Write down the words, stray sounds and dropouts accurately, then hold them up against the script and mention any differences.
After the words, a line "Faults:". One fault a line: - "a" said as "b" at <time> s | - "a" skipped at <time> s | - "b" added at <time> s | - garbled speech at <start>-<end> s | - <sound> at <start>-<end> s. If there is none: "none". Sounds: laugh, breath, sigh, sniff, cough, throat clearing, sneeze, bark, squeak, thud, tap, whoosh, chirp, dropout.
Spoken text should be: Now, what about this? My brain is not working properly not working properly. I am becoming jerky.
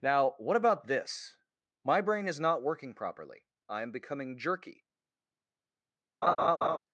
Now, what about this? My brain is not working properly. I am becoming jerky.
Faults:
- "not working properly" skipped at 3.5 s
- laugh at 6.2-6.8 s